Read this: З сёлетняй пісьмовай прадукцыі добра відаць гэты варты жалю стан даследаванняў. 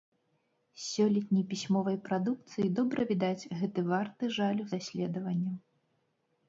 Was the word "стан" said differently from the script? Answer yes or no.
yes